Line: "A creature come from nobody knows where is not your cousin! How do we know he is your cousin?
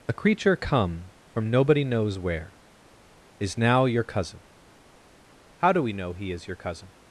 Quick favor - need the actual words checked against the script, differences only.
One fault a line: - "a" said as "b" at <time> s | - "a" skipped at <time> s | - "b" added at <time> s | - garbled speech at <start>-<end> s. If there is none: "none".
- "not" said as "now" at 3.6 s